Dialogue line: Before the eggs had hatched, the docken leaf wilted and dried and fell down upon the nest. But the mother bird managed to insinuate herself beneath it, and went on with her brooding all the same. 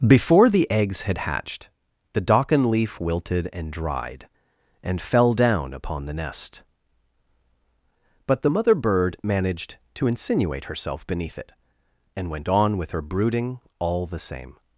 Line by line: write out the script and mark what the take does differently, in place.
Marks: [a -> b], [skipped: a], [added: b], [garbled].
Before the eggs had hatched, the docken leaf wilted and dried and fell down upon the nest. But the mother bird managed to insinuate herself beneath it, and went on with her brooding all the same.